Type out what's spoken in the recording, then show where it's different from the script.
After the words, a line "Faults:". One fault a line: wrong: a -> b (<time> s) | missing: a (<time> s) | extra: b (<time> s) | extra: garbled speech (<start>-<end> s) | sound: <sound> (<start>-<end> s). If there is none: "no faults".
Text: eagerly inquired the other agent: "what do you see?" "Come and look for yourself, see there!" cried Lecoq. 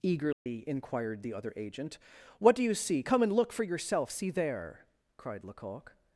eagerly inquired the other agent: "what do you see?" "Come and look for yourself, see there!" cried Lecoq.
Faults:
sound: dropout (0.3-0.5 s)